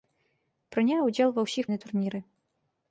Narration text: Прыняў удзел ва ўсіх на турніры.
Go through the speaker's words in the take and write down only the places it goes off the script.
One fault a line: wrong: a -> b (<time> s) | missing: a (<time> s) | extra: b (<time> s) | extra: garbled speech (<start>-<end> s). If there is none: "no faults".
no faults